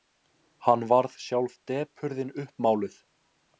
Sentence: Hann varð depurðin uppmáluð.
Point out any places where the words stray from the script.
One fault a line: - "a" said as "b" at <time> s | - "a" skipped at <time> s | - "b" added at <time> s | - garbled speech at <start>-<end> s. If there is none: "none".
- "sjálf" added at 1.3 s